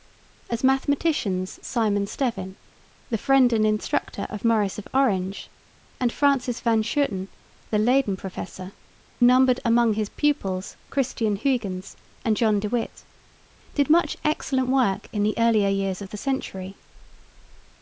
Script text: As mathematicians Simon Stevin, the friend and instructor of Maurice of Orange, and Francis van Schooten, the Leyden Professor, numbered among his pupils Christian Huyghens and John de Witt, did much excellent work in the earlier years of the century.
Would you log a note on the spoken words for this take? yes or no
no